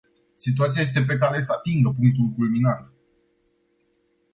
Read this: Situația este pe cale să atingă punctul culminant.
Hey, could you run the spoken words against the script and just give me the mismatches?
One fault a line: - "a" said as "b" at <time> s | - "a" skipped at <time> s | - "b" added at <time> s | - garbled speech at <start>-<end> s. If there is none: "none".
none